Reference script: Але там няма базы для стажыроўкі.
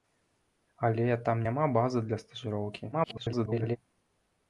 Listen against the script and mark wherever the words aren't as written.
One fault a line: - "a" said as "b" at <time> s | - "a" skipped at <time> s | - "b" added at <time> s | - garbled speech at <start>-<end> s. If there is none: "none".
- garbled speech at 2.9-3.8 s